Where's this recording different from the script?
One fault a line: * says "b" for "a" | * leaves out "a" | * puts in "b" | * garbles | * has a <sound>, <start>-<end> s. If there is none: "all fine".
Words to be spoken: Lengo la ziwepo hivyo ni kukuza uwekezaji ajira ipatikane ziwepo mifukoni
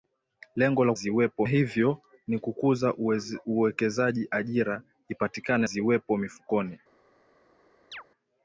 * has a chirp, 7.9-8.0 s